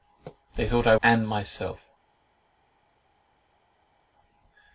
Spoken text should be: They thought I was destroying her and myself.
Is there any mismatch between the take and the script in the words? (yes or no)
yes